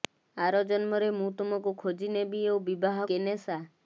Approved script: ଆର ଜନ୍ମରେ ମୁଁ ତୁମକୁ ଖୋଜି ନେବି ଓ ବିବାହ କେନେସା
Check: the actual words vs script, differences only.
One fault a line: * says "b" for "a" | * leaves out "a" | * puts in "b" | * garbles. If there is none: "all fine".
all fine